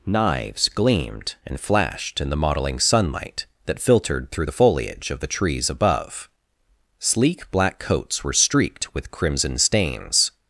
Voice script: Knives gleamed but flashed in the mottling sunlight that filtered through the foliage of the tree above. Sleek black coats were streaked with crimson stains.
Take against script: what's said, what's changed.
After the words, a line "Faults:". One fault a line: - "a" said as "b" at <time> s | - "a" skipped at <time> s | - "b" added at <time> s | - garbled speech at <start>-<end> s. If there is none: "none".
Knives gleamed and flashed in the mottling sunlight that filtered through the foliage of the trees above. Sleek black coats were streaked with crimson stains.
Faults:
- "but" said as "and" at 1.4 s
- "tree" said as "trees" at 5.3 s